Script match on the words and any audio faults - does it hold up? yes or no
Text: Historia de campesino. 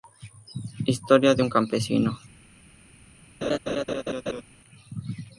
no